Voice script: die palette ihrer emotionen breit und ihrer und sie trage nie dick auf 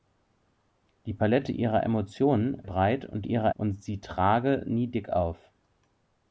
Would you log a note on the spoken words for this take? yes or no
no